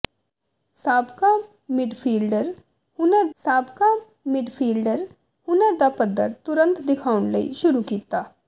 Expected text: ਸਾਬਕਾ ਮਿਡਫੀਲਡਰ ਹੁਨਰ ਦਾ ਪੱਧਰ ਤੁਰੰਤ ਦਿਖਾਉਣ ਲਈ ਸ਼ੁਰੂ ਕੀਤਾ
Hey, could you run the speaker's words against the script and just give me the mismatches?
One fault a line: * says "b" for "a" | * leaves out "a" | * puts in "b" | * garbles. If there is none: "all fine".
* puts in "ਸਾਬਕਾ ਮਿਡਫੀਲਡਰ ਹੁਨਰ"